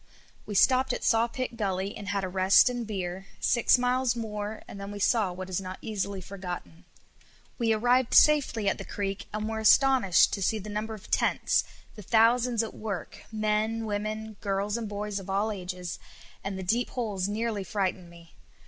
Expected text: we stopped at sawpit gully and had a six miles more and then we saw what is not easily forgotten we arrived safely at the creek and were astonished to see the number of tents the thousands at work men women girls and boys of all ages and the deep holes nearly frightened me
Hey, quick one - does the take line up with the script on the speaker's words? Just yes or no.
no